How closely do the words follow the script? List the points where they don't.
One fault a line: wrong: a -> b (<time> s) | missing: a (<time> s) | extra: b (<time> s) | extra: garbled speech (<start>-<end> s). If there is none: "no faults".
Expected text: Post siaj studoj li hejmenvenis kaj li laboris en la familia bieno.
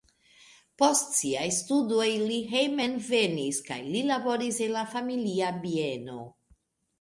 no faults